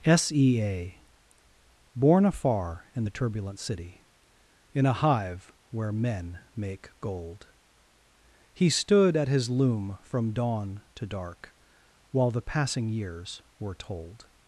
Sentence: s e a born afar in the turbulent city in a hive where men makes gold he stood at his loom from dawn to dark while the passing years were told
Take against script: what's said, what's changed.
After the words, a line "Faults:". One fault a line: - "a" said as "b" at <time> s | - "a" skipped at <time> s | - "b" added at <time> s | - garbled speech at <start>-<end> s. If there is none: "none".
s e a born afar in the turbulent city in a hive where men make gold he stood at his loom from dawn to dark while the passing years were told
Faults:
- "makes" said as "make" at 6.5 s